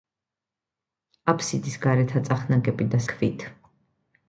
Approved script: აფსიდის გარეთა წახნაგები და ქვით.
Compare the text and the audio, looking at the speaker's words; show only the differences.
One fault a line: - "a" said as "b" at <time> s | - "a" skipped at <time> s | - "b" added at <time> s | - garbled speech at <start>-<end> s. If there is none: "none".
none